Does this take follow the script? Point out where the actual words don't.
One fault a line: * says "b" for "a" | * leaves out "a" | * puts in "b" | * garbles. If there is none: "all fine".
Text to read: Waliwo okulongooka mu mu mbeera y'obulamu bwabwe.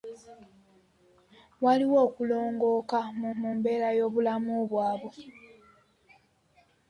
all fine